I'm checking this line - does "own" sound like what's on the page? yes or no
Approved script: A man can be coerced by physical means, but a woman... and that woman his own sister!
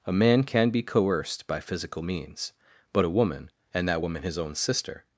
yes